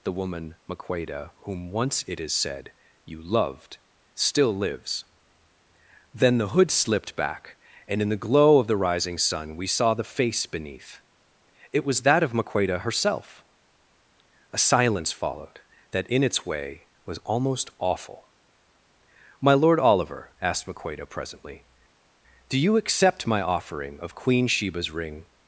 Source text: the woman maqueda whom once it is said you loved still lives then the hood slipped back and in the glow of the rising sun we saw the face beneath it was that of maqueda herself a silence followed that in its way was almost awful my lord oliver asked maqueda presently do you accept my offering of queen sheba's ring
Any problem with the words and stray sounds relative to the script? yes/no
no